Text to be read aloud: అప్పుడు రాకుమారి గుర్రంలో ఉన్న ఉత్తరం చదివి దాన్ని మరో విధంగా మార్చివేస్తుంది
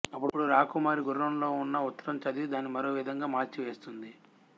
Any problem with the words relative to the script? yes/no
no